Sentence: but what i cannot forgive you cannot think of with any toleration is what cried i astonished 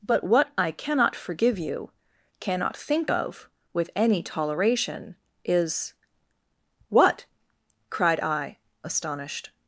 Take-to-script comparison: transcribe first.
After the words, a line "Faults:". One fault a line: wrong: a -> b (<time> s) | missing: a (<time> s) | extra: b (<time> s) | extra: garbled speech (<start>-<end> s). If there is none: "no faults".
but what i cannot forgive you cannot think of with any toleration is what cried i astonished
Faults:
no faults